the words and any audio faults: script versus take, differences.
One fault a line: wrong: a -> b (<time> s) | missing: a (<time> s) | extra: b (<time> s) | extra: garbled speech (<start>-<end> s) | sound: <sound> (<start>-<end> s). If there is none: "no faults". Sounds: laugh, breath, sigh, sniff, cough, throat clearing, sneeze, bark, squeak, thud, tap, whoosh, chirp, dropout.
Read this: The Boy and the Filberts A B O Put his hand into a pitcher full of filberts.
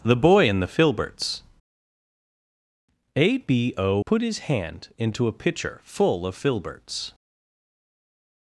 no faults